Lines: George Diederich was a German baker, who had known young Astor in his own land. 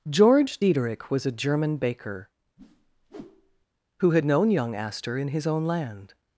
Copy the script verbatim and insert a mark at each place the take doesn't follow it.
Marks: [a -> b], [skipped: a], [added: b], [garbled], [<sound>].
George Diederich was a German baker, [whoosh] who had known young Astor in his own land.